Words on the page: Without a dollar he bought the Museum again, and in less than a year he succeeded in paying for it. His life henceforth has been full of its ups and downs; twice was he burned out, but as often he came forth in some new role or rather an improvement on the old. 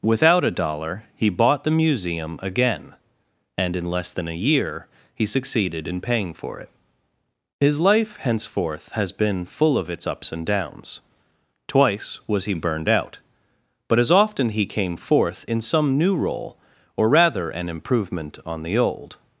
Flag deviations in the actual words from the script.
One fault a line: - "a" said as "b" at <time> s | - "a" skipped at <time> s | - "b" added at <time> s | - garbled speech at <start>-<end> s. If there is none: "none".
none